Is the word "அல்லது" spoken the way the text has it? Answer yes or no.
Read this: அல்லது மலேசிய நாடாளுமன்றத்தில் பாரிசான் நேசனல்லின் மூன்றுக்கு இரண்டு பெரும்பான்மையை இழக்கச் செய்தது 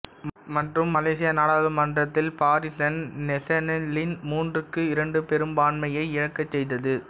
no